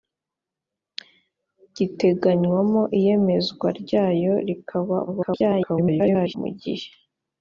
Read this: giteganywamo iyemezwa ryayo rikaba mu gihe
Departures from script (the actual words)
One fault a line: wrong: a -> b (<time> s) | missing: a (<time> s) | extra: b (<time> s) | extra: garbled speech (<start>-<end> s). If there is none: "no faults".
extra: garbled speech (5.1-6.4 s)